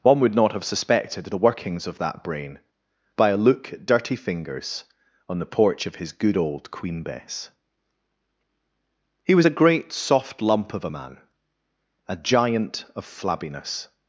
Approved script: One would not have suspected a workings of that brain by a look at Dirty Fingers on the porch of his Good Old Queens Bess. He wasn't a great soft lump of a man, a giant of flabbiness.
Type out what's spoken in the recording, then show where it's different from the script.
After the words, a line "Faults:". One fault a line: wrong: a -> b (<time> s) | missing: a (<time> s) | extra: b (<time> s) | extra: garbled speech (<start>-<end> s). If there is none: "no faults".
One would not have suspected the workings of that brain by a look at Dirty Fingers on the porch of his Good Old Queen Bess. He was a great soft lump of a man, a giant of flabbiness.
Faults:
wrong: a -> the (1.2 s)
wrong: Queens -> Queen (6.7 s)
wrong: wasn't -> was (9.4 s)